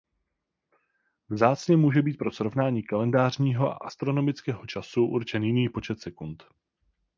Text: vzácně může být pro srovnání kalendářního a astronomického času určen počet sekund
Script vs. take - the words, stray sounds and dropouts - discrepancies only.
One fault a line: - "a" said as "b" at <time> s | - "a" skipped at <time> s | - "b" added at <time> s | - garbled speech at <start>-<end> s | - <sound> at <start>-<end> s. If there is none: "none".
- "jiný" added at 5.4 s